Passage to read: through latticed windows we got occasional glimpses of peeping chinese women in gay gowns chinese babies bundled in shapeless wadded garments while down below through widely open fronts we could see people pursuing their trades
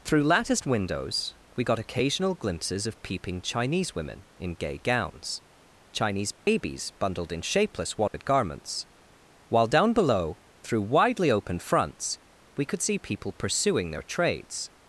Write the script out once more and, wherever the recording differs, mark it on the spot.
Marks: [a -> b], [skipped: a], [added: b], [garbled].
through latticed windows we got occasional glimpses of peeping chinese women in gay gowns chinese babies bundled in shapeless wadded garments while down below through widely open fronts we could see people pursuing their trades